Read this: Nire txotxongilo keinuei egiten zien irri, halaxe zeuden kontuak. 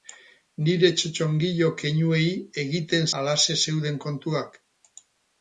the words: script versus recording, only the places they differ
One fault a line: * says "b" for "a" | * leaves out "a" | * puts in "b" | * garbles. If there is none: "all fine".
* leaves out "zien irri"